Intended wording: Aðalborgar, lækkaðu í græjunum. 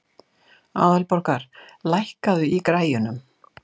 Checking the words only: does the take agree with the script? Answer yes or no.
yes